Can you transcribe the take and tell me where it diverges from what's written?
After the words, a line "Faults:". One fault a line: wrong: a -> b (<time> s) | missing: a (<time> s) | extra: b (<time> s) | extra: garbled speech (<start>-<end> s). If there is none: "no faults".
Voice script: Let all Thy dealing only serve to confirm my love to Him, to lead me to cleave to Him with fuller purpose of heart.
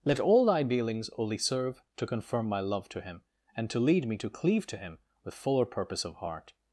Let all Thy dealings only serve to confirm my love to Him, and to lead me to cleave to Him with fuller purpose of heart.
Faults:
wrong: dealing -> dealings (0.6 s)
extra: and (3.5 s)